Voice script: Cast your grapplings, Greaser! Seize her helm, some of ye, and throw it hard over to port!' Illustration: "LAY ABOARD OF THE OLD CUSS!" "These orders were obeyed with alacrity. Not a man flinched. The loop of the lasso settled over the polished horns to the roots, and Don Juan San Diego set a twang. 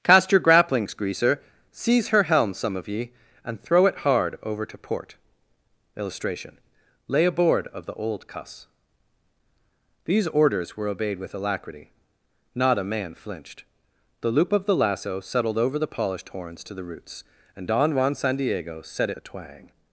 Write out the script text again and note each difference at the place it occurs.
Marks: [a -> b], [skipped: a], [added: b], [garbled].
Cast your grapplings, Greaser! Seize her helm, some of ye, and throw it hard over to port!' Illustration: "LAY ABOARD OF THE OLD CUSS!" "These orders were obeyed with alacrity. Not a man flinched. The loop of the lasso settled over the polished horns to the roots, and Don Juan San Diego set a twang.